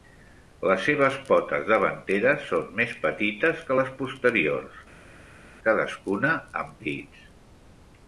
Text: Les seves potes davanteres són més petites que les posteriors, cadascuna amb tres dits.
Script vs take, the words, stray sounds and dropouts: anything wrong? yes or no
yes